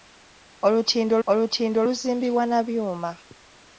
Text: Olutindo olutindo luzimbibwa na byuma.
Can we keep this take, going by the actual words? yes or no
yes